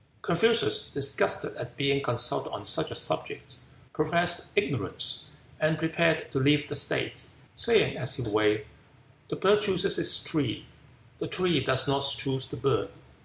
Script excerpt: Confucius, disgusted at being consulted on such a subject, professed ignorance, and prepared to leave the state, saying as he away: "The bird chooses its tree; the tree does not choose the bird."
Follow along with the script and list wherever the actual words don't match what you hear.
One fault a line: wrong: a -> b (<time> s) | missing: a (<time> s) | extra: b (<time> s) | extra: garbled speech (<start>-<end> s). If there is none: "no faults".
no faults